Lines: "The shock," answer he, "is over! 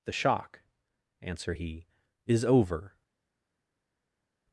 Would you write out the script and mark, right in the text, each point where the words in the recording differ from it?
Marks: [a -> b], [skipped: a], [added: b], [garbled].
"The shock," answer he, "is over!